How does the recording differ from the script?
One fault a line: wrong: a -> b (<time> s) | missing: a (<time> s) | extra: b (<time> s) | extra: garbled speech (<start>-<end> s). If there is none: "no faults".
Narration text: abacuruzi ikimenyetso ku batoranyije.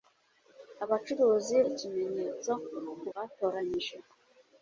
no faults